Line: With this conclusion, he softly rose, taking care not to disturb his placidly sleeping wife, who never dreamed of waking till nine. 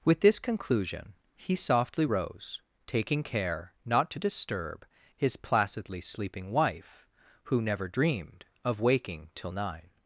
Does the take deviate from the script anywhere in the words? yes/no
no